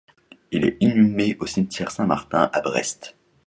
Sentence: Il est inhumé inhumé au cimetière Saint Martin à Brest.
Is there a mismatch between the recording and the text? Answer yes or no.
yes